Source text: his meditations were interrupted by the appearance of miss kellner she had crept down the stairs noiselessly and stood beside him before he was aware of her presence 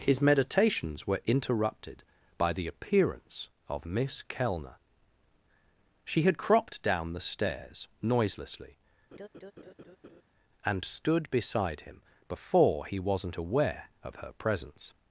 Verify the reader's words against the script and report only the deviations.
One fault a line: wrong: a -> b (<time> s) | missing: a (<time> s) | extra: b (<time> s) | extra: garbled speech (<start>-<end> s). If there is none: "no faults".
wrong: crept -> cropped (6.4 s)
wrong: was -> wasn't (13.0 s)